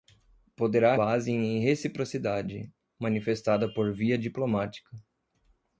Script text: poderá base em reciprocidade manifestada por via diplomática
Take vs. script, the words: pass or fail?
pass